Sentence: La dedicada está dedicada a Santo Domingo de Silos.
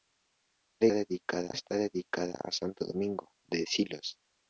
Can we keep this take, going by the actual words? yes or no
yes